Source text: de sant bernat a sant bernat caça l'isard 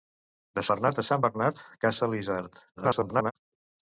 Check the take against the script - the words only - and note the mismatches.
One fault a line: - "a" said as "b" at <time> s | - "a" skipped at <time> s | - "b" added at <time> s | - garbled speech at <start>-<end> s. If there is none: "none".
- "sant" skipped at 0.6 s
- garbled speech at 2.8-3.3 s